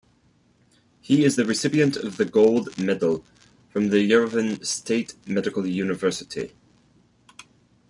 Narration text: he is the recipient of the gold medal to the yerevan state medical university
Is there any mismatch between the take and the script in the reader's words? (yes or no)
yes